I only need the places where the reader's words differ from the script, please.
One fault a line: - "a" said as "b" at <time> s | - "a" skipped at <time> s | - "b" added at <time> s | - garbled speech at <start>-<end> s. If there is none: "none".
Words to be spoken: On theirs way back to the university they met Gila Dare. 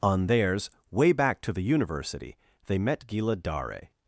none